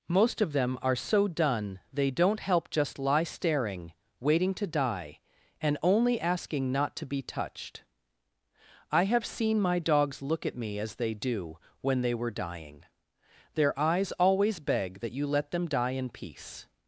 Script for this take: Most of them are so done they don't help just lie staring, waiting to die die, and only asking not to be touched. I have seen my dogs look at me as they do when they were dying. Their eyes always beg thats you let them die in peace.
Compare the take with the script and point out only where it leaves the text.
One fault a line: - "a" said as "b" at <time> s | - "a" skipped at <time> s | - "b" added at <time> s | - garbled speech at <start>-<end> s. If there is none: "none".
- "die" skipped at 5.2 s
- "thats" said as "that" at 15.0 s